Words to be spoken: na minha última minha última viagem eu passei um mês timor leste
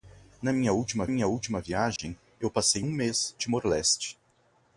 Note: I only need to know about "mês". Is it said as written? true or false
true